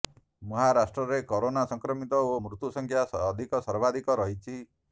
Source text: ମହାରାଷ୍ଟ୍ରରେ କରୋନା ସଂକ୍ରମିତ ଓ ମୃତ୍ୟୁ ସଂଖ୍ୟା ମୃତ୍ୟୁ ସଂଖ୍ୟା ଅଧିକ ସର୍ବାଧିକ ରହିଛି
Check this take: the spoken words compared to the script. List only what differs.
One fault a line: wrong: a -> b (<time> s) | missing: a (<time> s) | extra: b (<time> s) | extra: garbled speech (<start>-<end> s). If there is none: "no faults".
missing: ମୃତ୍ୟୁ ସଂଖ୍ୟା (3.1 s)